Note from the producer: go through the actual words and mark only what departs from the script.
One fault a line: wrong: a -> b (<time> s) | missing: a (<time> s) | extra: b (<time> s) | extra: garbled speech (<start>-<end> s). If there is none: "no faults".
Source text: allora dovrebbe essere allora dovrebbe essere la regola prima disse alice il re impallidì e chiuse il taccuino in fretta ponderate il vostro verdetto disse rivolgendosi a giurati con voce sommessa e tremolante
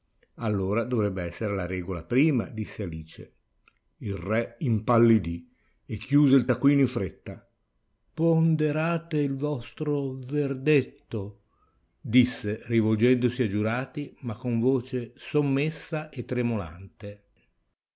missing: allora dovrebbe essere (1.5 s)
extra: ma (14.2 s)